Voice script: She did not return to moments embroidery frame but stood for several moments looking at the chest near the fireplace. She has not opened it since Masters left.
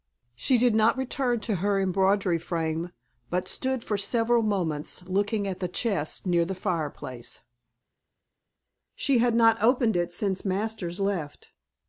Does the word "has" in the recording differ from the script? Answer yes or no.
yes